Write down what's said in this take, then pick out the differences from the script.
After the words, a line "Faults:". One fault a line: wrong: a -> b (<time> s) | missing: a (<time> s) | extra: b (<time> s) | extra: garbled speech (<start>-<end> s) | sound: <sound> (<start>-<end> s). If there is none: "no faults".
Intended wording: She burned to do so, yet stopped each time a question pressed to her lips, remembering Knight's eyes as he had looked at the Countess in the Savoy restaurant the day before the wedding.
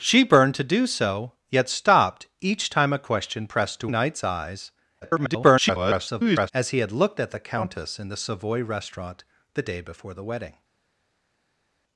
She burned to do so, yet stopped each time a question pressed to Knight's eyes [garbled] as he had looked at the Countess in the Savoy restaurant the day before the wedding.
Faults:
missing: her lips remembering (3.9 s)
extra: garbled speech (5.0-6.5 s)